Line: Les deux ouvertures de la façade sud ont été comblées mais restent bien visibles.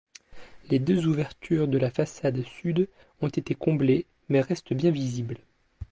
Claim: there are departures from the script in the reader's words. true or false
false